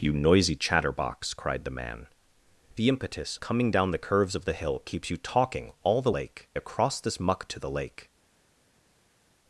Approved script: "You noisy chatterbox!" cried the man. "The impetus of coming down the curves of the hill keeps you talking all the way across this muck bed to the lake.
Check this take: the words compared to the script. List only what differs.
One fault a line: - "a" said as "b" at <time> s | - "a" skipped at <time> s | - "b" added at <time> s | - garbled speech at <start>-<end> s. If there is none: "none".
- "of" skipped at 3.4 s
- "way" said as "lake" at 6.1 s
- "bed" skipped at 7.5 s